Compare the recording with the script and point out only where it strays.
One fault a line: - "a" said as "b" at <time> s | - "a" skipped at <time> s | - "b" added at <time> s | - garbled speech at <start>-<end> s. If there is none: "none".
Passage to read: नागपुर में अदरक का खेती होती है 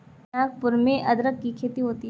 - "का" said as "की" at 1.4 s